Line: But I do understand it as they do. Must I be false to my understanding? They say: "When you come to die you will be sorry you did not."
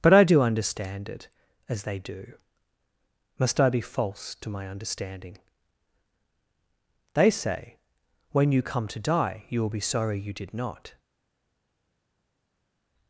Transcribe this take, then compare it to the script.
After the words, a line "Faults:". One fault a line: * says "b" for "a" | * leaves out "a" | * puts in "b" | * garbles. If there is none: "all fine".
But I do understand it as they do. Must I be false to my understanding? They say: "When you come to die you will be sorry you did not."
Faults:
all fine